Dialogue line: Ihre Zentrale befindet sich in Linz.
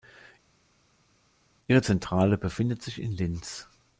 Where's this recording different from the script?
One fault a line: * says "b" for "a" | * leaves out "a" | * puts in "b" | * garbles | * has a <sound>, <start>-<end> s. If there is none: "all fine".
all fine